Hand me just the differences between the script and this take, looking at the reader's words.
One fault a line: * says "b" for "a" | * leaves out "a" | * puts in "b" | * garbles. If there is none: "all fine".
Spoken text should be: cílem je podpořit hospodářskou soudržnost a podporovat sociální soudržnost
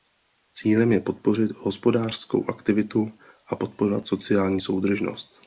* says "aktivitu" for "soudržnost"